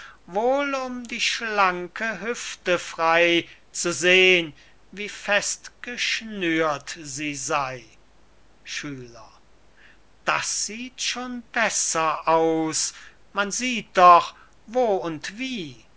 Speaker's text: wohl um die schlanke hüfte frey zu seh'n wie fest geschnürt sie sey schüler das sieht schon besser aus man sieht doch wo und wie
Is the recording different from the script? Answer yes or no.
no